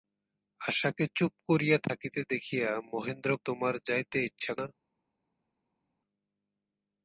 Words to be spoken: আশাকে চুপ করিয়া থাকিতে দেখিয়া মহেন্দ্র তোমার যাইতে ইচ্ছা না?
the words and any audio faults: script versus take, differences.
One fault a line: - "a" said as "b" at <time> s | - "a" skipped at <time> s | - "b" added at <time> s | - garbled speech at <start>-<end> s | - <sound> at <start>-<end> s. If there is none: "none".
none